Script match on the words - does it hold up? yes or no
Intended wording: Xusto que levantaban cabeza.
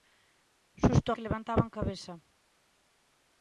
yes